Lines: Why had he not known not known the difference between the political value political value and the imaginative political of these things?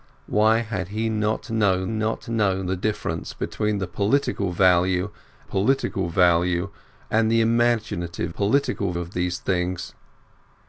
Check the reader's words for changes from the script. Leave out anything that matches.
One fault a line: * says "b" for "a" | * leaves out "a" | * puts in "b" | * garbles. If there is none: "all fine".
all fine